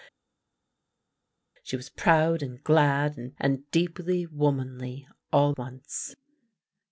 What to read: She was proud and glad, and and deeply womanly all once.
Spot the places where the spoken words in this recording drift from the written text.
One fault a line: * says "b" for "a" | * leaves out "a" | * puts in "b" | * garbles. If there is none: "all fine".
all fine